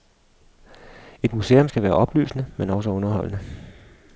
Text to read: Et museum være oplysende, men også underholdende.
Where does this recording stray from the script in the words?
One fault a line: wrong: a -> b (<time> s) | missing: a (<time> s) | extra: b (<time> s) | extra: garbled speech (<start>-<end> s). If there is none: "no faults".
extra: skal (1.6 s)